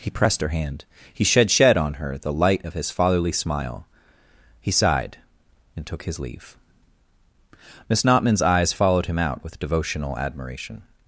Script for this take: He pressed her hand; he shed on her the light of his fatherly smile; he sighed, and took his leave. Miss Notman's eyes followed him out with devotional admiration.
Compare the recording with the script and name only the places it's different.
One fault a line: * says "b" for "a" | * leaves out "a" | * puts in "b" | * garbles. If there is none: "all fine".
* puts in "shed"